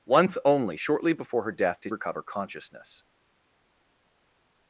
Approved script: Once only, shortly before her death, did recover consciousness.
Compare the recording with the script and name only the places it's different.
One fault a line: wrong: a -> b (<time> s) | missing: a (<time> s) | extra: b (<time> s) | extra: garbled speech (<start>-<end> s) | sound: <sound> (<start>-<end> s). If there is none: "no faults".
no faults